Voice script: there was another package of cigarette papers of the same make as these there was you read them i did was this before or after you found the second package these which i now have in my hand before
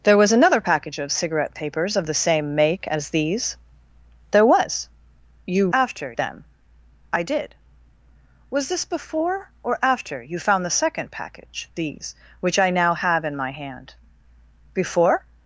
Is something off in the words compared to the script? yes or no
yes